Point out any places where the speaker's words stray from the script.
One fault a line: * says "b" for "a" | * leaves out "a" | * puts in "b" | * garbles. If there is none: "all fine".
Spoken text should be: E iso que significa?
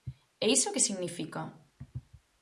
all fine